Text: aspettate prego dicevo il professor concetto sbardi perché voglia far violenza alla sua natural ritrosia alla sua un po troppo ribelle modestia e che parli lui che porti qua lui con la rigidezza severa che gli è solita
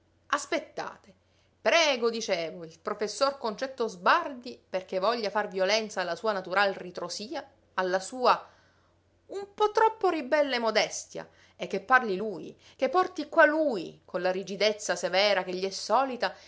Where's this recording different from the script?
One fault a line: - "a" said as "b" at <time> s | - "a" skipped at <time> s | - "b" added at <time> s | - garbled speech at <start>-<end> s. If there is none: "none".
none